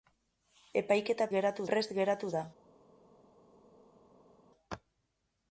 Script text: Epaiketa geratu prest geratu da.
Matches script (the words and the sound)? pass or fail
pass